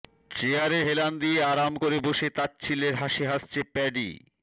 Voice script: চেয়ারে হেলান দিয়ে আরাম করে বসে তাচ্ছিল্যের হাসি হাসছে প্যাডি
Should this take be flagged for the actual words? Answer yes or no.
no